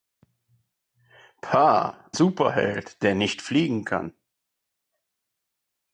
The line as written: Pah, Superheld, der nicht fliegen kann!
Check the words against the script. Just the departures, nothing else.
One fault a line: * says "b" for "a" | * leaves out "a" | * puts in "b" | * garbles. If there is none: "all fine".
all fine